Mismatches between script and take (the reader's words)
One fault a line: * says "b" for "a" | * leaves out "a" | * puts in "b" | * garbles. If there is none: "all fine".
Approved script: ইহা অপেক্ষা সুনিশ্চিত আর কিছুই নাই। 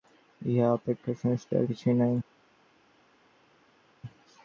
all fine